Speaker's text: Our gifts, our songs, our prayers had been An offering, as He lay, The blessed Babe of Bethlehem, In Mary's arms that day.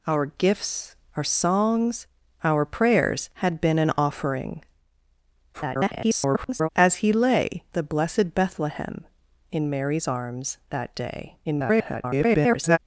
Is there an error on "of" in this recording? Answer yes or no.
yes